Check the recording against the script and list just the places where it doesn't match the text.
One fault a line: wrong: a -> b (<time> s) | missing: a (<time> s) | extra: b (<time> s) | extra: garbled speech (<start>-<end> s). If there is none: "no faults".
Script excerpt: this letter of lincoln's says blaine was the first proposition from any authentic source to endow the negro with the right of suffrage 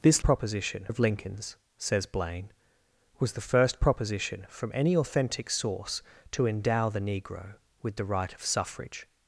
wrong: letter -> proposition (0.2 s)